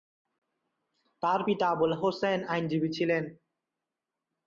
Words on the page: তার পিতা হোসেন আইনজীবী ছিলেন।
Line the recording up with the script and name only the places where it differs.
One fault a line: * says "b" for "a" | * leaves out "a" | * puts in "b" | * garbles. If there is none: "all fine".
* puts in "আবুল"